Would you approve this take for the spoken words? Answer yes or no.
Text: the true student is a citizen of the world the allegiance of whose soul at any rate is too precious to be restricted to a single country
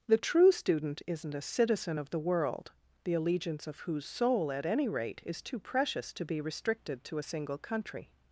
no